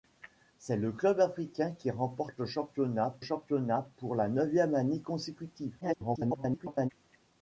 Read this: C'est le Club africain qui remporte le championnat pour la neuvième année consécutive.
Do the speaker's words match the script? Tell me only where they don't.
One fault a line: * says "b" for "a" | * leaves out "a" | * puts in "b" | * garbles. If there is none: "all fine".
* puts in "championnat"
* garbles